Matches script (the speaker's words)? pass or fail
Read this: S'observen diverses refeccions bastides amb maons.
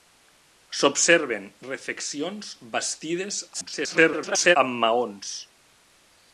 fail